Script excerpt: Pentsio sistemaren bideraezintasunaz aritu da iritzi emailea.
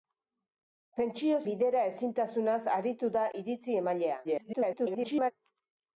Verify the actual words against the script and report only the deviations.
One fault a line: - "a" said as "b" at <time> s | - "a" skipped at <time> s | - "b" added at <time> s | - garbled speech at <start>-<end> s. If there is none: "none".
- "sistemaren" skipped at 1.4 s
- garbled speech at 4.2-5.3 s